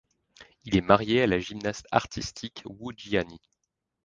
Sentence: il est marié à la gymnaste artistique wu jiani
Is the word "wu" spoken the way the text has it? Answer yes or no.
yes